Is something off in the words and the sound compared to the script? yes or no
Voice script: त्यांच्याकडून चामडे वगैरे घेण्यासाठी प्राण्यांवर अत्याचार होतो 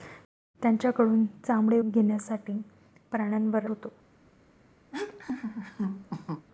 yes